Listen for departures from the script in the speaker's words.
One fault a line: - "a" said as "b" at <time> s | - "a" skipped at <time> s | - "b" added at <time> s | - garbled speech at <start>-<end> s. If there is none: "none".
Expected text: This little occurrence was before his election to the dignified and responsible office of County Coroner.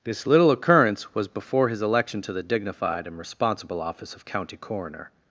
none